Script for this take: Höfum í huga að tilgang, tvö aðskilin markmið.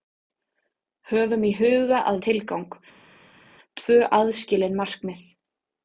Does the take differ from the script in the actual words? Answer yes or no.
no